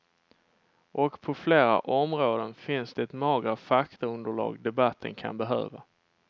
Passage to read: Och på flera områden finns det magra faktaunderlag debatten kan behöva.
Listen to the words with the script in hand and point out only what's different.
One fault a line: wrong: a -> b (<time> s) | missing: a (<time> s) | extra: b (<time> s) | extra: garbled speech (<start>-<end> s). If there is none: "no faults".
no faults